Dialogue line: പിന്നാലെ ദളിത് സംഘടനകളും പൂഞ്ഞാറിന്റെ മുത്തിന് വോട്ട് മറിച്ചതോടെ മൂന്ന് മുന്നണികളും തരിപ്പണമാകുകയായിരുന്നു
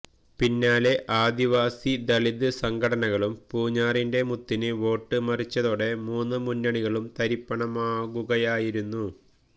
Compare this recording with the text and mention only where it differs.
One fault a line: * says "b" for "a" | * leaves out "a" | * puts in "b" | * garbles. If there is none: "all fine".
* puts in "ആദിവാസി"